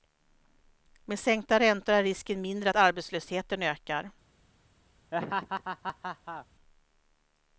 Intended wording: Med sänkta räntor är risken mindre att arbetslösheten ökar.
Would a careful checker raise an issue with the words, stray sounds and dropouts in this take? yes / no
yes